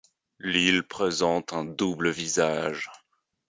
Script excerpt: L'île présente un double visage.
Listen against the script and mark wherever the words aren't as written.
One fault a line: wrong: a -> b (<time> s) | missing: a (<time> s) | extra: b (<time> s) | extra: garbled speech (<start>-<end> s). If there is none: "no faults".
no faults